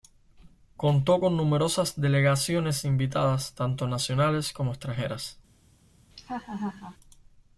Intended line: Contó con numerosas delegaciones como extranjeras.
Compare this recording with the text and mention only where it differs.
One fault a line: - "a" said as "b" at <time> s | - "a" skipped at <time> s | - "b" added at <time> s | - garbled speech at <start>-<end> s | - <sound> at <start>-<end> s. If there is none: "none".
- "invitadas tanto nacionales" added at 2.8 s
- laugh at 6.1-7.0 s